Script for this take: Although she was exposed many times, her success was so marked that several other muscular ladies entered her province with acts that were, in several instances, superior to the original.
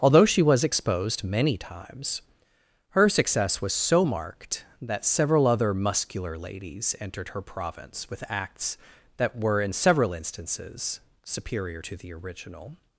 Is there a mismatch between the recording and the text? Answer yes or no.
no